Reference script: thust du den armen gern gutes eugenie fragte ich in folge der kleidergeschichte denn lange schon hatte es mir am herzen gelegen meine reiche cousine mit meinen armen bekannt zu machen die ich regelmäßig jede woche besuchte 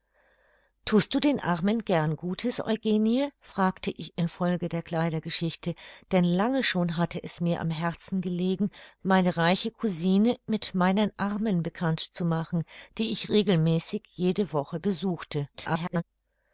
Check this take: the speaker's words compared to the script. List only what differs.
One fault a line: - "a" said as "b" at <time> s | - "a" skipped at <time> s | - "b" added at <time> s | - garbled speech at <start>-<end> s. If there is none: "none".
- garbled speech at 15.5-16.0 s